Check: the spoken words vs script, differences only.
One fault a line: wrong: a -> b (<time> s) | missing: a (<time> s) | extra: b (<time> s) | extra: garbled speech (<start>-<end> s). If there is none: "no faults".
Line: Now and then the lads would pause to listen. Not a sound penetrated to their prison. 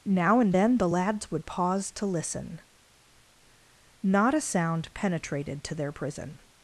no faults